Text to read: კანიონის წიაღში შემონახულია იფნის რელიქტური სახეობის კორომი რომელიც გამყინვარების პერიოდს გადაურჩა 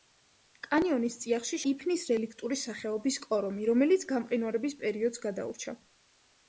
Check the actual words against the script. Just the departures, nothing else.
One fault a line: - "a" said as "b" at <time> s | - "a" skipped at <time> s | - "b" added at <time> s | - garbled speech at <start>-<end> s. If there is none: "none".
- "შემონახულია" skipped at 1.6 s